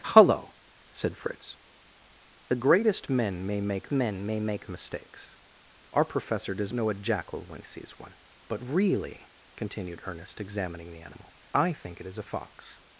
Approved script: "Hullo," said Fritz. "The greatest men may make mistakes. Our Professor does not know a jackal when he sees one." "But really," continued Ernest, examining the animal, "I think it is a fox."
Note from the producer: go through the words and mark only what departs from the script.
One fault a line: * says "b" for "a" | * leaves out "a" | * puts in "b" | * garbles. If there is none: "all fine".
* puts in "men may make"
* leaves out "not"
* leaves out "he"